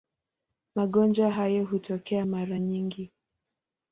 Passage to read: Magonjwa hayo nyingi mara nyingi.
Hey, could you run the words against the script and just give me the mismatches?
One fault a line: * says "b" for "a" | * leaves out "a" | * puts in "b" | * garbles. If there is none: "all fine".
* says "hutokea" for "nyingi"